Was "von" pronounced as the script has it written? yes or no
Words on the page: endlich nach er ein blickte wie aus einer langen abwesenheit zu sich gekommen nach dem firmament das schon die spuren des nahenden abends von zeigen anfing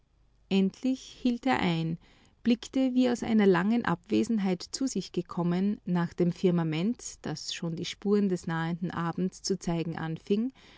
no